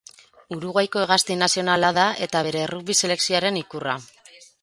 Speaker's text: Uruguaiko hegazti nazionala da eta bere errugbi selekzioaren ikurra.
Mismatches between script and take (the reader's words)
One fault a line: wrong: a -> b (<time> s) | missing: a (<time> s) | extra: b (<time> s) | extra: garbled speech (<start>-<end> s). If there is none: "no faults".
no faults